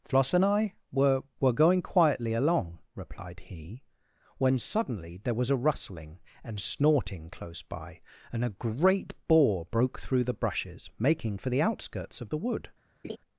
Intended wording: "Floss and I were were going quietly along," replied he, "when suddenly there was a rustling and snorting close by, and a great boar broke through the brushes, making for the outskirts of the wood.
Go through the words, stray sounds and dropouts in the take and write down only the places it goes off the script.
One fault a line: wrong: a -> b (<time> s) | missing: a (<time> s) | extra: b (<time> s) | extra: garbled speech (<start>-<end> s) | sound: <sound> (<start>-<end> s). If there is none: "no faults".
sound: laugh (13.0-13.2 s)